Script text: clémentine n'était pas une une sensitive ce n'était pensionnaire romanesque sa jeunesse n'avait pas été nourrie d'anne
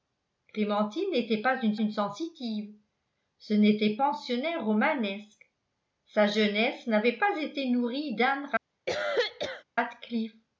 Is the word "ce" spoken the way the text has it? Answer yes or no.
yes